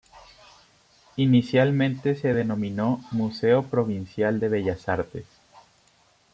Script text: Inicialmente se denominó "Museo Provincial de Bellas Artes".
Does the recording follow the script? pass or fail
pass